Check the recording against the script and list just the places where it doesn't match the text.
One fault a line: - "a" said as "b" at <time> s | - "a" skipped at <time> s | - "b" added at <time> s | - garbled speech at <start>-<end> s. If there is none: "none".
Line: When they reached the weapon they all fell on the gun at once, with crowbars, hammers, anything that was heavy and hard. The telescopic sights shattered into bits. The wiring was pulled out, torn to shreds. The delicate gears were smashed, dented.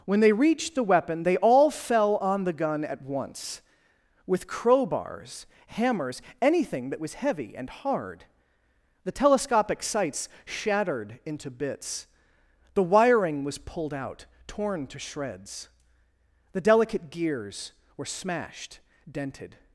none